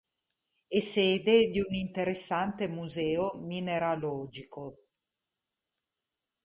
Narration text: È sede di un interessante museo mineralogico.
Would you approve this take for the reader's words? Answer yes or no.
yes